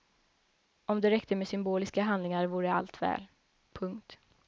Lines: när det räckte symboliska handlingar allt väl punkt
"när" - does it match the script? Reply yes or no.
no